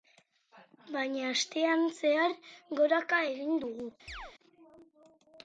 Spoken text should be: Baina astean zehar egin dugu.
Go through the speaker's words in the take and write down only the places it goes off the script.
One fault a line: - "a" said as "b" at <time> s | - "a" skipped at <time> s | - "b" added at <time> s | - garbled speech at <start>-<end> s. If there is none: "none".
- "goraka" added at 2.8 s